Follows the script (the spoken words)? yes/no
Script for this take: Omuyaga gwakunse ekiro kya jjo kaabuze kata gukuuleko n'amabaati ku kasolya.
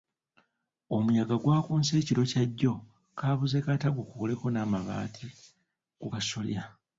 yes